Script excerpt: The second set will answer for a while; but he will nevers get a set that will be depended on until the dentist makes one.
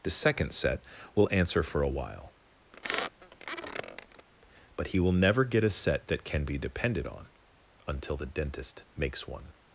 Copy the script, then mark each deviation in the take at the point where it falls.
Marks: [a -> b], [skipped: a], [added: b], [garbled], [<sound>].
The second set will answer for a while; [squeak] but he will [nevers -> never] get a set that [will -> can] be depended on until the dentist makes one.